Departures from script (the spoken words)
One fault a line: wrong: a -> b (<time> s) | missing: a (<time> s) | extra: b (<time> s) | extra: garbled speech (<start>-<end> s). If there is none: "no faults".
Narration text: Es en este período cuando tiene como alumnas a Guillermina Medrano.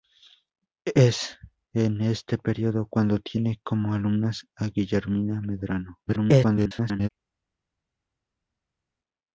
extra: garbled speech (6.1-7.1 s)